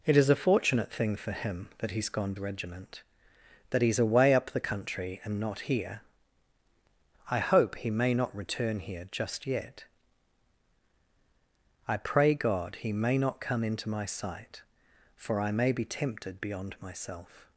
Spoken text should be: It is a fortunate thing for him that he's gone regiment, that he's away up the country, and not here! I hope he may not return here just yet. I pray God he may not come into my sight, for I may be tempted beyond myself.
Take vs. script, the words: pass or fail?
pass